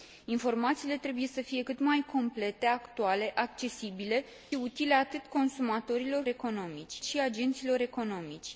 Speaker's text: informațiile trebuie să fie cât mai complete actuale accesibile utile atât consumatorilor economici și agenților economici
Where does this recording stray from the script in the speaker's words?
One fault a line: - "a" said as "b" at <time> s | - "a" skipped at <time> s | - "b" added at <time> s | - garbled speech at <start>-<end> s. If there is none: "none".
none